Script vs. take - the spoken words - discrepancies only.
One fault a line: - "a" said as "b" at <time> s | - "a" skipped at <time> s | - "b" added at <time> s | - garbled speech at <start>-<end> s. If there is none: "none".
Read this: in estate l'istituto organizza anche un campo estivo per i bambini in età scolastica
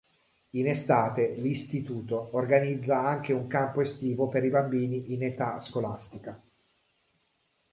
none